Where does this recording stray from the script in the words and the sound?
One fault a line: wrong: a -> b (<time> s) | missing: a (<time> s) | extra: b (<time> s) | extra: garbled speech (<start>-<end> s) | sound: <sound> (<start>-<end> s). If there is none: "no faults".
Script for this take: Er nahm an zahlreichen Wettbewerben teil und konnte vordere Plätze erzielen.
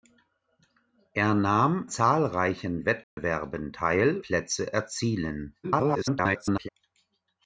missing: an (1.9 s)
sound: dropout (3.0-3.2 s)
missing: und konnte vordere (4.2 s)
extra: garbled speech (5.6-6.7 s)